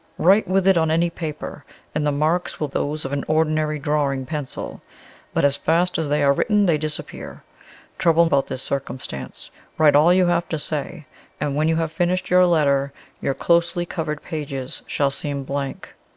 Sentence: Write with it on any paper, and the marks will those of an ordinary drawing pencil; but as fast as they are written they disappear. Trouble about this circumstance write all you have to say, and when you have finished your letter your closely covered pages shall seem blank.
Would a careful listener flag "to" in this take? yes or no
no